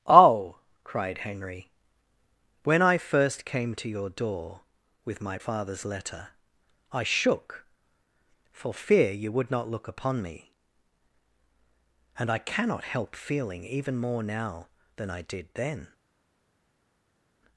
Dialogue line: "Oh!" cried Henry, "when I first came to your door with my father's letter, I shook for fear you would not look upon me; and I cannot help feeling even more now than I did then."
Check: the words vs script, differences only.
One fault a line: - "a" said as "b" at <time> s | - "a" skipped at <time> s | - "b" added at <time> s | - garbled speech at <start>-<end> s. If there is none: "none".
none